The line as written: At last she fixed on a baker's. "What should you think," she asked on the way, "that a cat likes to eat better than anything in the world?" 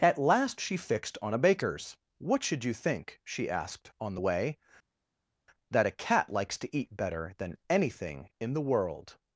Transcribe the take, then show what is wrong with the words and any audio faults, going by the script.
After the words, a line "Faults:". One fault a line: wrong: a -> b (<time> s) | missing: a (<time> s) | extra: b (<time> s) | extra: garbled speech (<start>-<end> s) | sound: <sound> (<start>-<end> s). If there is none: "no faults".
At last she fixed on a baker's. "What should you think," she asked on the way, "that a cat likes to eat better than anything in the world?"
Faults:
no faults